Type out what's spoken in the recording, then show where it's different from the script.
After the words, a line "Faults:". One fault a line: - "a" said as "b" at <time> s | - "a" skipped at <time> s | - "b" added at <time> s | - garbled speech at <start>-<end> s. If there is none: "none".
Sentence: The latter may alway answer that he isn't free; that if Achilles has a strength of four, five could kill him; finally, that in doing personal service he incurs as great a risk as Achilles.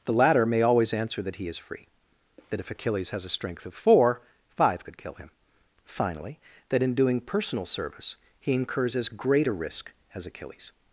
The latter may always answer that he is free; that if Achilles has a strength of four, five could kill him; finally, that in doing personal service he incurs as great a risk as Achilles.
Faults:
- "alway" said as "always" at 0.6 s
- "isn't" said as "is" at 1.5 s